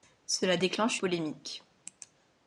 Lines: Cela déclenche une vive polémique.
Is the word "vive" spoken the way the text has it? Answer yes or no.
no